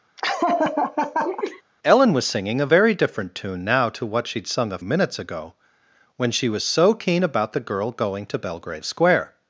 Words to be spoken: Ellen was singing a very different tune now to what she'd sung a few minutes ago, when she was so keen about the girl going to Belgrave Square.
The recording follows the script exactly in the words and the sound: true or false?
false